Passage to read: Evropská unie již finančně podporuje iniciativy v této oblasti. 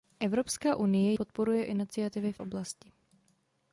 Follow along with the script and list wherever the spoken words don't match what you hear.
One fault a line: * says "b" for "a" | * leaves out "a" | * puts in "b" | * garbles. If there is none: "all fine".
* leaves out "již finančně"
* leaves out "této"